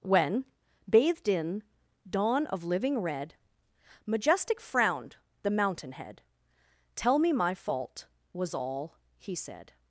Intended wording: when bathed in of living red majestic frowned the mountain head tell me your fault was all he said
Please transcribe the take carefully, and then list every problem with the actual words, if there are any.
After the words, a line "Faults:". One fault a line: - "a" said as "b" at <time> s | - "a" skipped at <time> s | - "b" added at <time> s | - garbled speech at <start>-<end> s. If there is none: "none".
when bathed in dawn of living red majestic frowned the mountain head tell me my fault was all he said
Faults:
- "dawn" added at 2.1 s
- "your" said as "my" at 7.3 s